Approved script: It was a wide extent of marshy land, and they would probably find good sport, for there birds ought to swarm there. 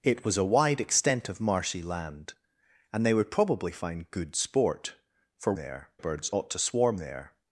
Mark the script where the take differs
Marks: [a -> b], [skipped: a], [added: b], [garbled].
It was a wide extent of marshy land, and they would probably find good sport, for there birds ought to swarm there.